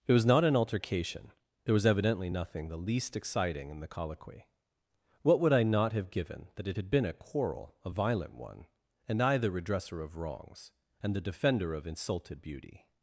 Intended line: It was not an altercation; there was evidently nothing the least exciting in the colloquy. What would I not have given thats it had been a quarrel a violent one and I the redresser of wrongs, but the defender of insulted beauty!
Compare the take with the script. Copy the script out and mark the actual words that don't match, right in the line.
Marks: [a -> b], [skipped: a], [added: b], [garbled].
It was not an altercation; there was evidently nothing the least exciting in the colloquy. What would I not have given [thats -> that] it had been a quarrel a violent one and I the redresser of wrongs, [but -> and] the defender of insulted beauty!